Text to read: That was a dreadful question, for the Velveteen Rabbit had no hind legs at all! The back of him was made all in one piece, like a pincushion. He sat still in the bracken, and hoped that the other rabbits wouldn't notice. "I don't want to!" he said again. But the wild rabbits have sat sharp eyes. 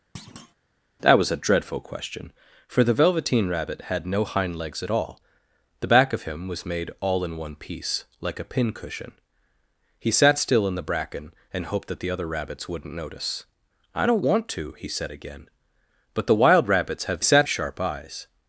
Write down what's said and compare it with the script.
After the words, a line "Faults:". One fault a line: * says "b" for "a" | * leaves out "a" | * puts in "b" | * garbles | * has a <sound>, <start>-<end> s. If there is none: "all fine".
That was a dreadful question, for the Velveteen Rabbit had no hind legs at all! The back of him was made all in one piece, like a pincushion. He sat still in the bracken, and hoped that the other rabbits wouldn't notice. "I don't want to!" he said again. But the wild rabbits have sat sharp eyes.
Faults:
* has a thud, 0.1-0.5 s